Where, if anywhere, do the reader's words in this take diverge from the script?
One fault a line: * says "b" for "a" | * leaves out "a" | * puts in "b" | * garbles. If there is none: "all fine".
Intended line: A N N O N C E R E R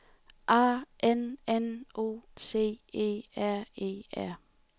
* leaves out "N"